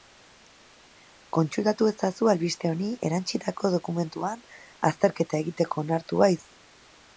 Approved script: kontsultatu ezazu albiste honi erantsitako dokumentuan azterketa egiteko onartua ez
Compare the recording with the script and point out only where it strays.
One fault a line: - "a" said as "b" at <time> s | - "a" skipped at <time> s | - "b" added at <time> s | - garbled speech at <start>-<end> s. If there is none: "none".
none